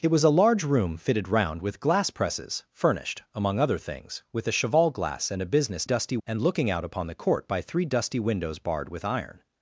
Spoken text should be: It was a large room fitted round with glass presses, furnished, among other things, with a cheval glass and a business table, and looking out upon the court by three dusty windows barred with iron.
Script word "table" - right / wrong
wrong